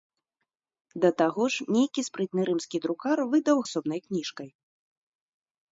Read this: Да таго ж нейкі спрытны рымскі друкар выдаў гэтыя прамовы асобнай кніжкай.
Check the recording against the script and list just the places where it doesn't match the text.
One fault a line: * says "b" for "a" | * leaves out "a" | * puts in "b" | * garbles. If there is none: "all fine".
* leaves out "гэтыя прамовы"